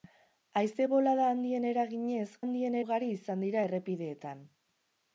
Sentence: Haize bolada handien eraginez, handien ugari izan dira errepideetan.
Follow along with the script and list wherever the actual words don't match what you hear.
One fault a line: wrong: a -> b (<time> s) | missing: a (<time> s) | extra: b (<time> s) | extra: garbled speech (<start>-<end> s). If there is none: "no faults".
no faults